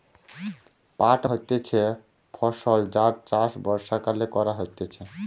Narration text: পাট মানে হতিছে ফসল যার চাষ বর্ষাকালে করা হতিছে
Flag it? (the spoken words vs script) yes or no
yes